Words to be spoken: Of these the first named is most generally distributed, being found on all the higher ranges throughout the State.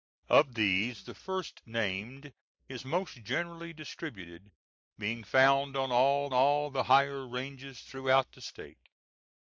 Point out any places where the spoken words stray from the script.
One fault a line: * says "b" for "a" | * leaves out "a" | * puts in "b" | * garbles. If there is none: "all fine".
* puts in "all"